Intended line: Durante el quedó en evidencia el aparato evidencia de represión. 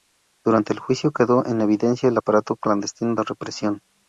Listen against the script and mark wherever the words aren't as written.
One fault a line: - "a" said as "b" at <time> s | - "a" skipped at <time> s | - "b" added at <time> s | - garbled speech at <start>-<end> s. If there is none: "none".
- "juicio" added at 0.8 s
- "evidencia" said as "clandestino" at 2.6 s